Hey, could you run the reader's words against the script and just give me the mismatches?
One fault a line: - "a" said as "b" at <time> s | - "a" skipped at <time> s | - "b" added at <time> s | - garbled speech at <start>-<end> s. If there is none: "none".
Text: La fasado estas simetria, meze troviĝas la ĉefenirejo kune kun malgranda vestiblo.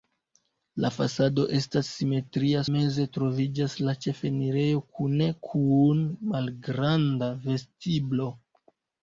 none